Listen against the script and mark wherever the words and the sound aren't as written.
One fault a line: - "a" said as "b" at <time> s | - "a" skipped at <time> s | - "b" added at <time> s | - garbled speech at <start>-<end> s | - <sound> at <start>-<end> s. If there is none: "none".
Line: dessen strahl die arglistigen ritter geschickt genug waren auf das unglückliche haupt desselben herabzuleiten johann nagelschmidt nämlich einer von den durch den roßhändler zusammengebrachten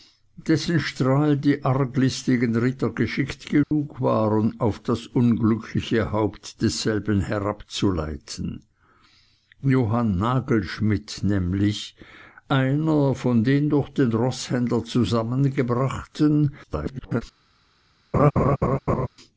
- dropout at 3.6-3.7 s
- garbled speech at 16.6-17.2 s
- laugh at 18.1-19.1 s